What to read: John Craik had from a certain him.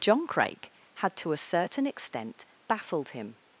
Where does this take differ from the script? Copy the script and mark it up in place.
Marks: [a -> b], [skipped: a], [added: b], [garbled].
John Craik had [from -> to] a certain [added: extent baffled] him.